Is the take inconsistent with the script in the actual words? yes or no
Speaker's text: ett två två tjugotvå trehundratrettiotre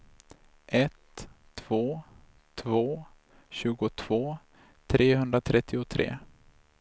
no